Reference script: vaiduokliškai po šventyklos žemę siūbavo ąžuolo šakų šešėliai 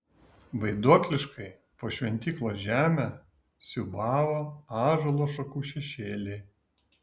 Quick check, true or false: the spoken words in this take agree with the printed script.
true